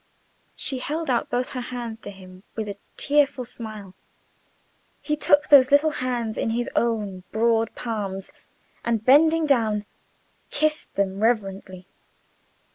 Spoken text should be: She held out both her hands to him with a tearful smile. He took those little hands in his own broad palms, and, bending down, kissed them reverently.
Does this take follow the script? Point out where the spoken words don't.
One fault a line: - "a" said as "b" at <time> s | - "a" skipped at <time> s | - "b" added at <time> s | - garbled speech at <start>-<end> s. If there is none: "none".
none